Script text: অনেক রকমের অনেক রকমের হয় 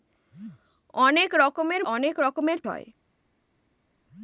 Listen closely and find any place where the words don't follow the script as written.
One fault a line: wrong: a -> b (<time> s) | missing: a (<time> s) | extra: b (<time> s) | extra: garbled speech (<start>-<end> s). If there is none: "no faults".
no faults